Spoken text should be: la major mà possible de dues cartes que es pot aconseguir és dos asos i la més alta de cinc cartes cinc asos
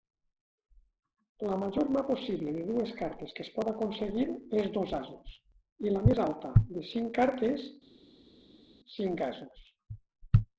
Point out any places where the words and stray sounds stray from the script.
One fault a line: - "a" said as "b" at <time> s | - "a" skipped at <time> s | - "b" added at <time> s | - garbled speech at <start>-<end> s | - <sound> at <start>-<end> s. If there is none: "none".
none